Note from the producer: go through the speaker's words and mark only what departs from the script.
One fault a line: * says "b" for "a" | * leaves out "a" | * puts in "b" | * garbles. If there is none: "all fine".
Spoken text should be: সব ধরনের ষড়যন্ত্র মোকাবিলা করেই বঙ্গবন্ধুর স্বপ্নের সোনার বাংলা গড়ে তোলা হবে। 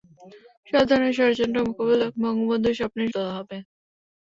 * leaves out "করেই"
* leaves out "সোনার বাংলা গড়ে"